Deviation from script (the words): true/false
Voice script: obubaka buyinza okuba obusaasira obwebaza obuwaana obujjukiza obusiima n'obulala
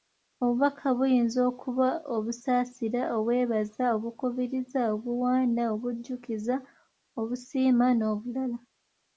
true